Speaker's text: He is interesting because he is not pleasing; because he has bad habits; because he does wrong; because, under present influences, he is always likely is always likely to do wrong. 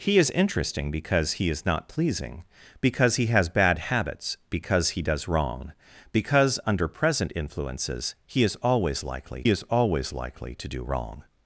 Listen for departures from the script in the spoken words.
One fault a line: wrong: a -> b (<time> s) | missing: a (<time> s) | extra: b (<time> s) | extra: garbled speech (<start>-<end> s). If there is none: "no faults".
no faults